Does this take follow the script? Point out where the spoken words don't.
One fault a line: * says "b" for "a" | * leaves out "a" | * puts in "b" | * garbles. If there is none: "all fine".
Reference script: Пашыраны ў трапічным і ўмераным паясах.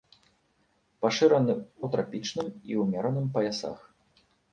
all fine